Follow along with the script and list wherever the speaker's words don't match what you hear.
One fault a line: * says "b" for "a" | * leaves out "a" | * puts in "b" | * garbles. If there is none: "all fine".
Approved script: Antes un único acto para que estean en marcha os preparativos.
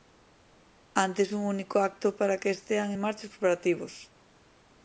all fine